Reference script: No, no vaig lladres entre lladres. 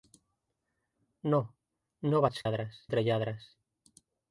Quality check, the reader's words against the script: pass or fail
pass